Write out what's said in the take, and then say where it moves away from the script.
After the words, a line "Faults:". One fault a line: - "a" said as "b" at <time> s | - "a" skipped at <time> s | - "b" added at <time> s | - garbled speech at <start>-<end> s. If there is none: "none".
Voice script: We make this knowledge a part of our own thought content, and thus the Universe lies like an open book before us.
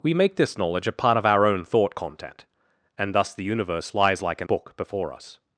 We make this knowledge a part of our own thought content, and thus the Universe lies like an book before us.
Faults:
- "open" skipped at 4.5 s